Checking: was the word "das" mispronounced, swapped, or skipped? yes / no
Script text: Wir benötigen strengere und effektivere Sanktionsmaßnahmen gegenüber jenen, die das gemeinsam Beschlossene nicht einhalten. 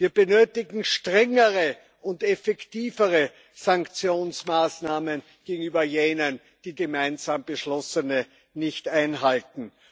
yes